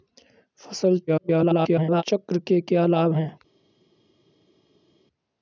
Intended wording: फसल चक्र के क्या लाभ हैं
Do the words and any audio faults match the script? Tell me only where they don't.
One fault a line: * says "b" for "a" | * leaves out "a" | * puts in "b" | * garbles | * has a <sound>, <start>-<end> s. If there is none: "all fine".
* garbles